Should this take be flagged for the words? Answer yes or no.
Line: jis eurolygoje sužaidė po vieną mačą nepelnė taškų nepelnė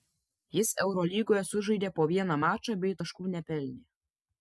yes